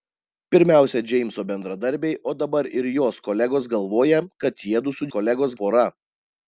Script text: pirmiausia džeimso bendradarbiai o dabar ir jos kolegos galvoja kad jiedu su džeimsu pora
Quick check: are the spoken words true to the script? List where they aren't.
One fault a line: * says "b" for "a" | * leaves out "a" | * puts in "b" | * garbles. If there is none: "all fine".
* says "kolegos" for "džeimsu"